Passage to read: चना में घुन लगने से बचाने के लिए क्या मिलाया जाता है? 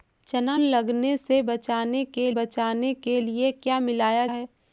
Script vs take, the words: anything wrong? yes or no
yes